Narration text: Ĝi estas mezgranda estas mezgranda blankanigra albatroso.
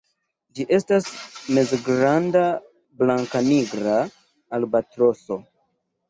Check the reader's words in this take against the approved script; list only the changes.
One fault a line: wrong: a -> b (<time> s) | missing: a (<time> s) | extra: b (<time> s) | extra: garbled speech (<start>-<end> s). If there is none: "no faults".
missing: estas mezgranda (2.4 s)